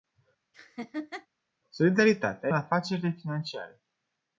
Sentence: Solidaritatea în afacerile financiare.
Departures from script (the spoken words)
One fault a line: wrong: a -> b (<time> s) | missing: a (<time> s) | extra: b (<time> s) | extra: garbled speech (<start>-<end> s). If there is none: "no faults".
no faults